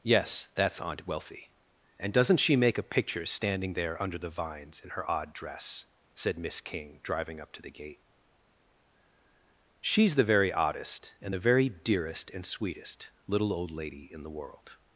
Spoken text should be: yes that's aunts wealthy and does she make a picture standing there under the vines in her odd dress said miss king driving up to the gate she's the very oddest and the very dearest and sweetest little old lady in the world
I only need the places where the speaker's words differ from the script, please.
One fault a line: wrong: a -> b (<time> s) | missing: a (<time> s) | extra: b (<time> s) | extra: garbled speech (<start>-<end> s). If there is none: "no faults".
wrong: aunts -> aunt (0.8 s)
wrong: does -> doesn't (2.1 s)